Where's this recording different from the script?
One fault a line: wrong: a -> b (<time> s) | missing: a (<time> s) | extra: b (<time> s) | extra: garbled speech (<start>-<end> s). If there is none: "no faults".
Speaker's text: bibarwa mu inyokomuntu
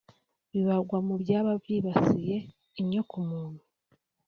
extra: byaba byibasiye (1.2 s)